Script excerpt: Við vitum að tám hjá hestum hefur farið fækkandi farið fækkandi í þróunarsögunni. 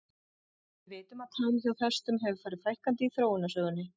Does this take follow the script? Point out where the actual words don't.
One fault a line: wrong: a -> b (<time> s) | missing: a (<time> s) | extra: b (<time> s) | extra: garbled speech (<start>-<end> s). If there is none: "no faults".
missing: farið fækkandi (3.1 s)